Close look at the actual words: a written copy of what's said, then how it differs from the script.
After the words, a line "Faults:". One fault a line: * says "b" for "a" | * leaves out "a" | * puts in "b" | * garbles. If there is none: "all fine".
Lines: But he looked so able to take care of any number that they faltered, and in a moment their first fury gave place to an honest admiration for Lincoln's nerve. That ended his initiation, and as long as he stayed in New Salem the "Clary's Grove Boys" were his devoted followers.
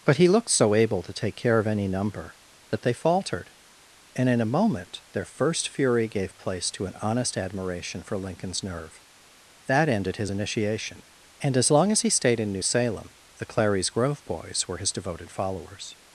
But he looked so able to take care of any number that they faltered, and in a moment their first fury gave place to an honest admiration for Lincoln's nerve. That ended his initiation, and as long as he stayed in New Salem the "Clary's Grove Boys" were his devoted followers.
Faults:
all fine